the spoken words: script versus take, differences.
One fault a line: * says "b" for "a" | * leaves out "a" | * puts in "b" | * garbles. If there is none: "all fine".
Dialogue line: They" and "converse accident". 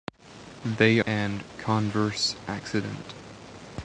all fine